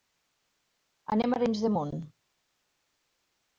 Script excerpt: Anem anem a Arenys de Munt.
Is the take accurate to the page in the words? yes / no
no